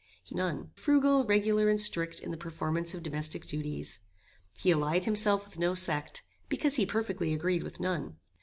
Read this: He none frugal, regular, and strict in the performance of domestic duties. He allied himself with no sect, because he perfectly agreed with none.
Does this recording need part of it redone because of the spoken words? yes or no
no